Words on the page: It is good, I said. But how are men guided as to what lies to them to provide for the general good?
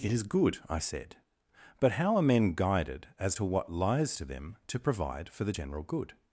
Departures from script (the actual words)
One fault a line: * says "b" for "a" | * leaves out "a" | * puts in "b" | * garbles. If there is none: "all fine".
all fine